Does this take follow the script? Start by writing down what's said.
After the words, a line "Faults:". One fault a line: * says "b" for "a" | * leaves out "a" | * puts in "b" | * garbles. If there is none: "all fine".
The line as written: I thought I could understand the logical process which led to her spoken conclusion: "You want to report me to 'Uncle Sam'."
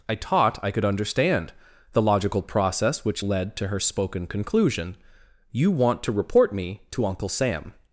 I taught I could understand the logical process which led to her spoken conclusion: "You want to report me to 'Uncle Sam'."
Faults:
* says "taught" for "thought"